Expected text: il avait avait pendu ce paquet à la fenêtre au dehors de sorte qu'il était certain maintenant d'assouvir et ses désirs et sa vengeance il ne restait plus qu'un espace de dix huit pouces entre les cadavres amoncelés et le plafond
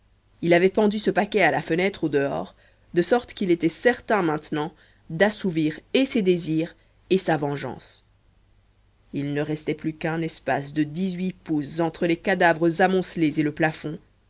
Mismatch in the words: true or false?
true